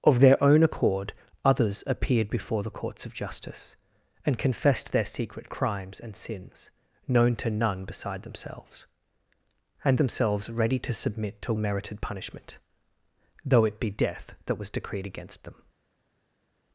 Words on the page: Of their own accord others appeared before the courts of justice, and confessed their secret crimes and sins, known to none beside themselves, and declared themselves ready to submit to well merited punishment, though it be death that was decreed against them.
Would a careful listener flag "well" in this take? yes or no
yes